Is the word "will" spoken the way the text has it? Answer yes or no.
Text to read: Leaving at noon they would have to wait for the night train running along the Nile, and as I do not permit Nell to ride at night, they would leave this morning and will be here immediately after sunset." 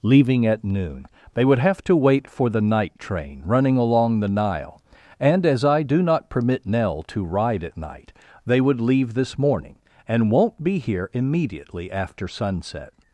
no